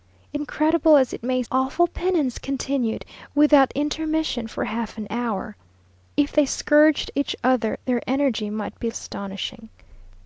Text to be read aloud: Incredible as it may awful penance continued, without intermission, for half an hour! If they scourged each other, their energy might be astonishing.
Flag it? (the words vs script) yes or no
no